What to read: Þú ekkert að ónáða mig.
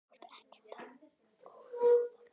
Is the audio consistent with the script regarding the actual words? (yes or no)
no